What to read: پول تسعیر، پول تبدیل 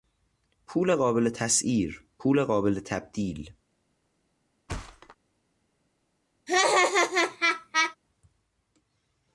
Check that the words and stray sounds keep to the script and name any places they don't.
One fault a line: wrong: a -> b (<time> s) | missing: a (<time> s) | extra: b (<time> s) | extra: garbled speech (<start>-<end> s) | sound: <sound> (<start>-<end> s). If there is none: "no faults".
extra: قابل (0.9 s)
extra: قابل (2.4 s)
sound: thud (4.7-5.2 s)
sound: laugh (6.5-8.0 s)